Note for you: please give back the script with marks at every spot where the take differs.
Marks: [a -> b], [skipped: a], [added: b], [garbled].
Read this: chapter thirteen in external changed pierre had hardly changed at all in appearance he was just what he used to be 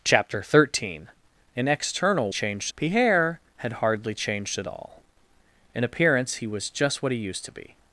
chapter thirteen in external changed pierre had hardly changed at all in appearance he was just what he used to be